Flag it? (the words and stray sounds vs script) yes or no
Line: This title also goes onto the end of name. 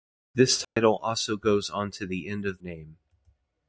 yes